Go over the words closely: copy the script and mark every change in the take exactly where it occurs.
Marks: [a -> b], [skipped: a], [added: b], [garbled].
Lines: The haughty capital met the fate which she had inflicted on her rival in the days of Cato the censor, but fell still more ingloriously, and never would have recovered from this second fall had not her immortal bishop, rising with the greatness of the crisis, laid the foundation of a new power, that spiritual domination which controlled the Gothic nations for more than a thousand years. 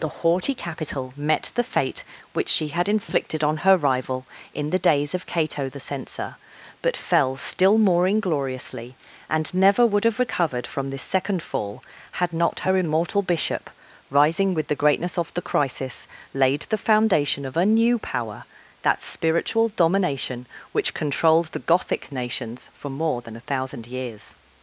The haughty capital met the fate which she had inflicted on her rival in the days of Cato the censor, but fell still more ingloriously, and never would have recovered from this second fall had not her immortal bishop, rising with the greatness of the crisis, laid the foundation of a new power, that spiritual domination which controlled the Gothic nations for more than a thousand years.